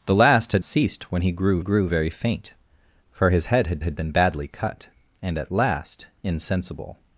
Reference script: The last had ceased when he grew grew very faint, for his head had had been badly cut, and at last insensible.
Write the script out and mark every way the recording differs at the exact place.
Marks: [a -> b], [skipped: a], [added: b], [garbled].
The last had ceased when he grew grew very faint, for his head had had been badly cut, and at last insensible.